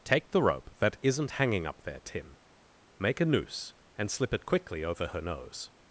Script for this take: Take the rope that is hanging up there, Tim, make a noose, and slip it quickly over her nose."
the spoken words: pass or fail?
fail